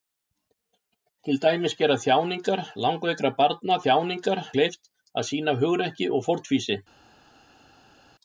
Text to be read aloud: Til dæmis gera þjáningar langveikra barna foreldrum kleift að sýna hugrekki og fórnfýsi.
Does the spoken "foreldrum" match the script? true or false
false